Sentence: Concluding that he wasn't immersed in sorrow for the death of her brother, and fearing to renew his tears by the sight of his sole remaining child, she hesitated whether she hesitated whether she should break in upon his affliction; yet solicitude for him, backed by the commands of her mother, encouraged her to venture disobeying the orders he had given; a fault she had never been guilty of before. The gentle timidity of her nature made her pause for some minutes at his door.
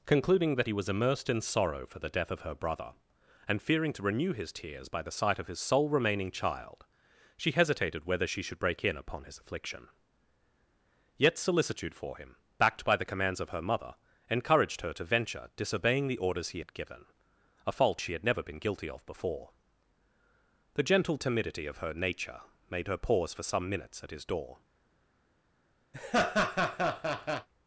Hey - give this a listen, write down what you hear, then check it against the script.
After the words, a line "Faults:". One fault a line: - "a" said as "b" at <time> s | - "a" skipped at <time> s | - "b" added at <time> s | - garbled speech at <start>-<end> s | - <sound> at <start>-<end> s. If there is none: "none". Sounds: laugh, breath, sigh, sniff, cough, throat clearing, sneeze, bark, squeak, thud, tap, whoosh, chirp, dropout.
Concluding that he was immersed in sorrow for the death of her brother, and fearing to renew his tears by the sight of his sole remaining child, she hesitated whether she should break in upon his affliction; yet solicitude for him, backed by the commands of her mother, encouraged her to venture disobeying the orders he had given; a fault she had never been guilty of before. The gentle timidity of her nature made her pause for some minutes at his door.
Faults:
- "wasn't" said as "was" at 0.7 s
- "hesitated whether she" skipped at 8.4 s
- laugh at 25.9-27.5 s